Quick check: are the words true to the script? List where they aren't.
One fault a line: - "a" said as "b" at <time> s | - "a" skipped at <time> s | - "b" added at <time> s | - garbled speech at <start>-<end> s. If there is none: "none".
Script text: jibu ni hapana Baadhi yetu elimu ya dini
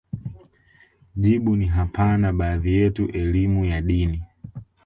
none